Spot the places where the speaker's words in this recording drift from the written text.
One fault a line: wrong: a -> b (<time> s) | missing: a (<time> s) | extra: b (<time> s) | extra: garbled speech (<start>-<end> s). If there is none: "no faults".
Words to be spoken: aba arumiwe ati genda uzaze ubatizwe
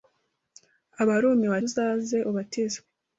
missing: ati genda (1.6 s)